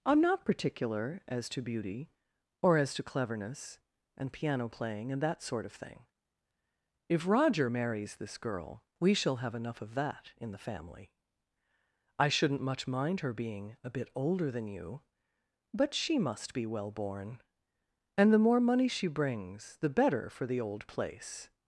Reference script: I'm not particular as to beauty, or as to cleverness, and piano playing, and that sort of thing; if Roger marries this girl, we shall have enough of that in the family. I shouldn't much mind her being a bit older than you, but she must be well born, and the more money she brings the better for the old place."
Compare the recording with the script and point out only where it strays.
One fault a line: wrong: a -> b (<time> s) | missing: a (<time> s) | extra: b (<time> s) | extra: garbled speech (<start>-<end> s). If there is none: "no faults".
no faults